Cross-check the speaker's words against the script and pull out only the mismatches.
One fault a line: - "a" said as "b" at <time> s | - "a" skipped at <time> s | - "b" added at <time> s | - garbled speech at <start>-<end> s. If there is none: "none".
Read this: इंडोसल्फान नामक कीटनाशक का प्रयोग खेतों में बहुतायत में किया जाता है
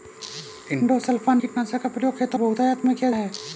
- "नामक" skipped at 1.4 s
- "में" skipped at 2.4 s
- "जाता" skipped at 3.1 s